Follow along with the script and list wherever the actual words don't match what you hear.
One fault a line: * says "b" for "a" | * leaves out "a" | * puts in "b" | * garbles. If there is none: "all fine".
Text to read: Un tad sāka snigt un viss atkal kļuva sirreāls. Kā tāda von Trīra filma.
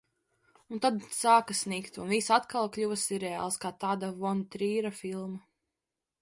all fine